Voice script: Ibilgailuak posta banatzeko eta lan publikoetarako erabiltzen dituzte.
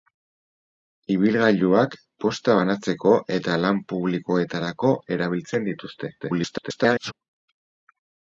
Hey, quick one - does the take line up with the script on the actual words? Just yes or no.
no